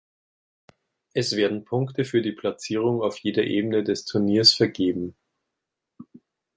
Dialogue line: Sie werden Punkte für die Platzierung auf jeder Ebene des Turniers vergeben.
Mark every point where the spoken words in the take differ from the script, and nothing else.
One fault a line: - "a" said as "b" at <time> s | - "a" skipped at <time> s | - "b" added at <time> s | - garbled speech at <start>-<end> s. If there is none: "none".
- "Sie" said as "Es" at 1.1 s